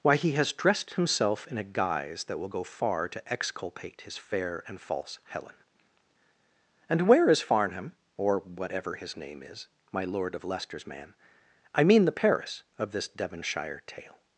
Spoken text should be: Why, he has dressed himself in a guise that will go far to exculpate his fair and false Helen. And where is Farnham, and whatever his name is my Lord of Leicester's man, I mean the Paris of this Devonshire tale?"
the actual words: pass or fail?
fail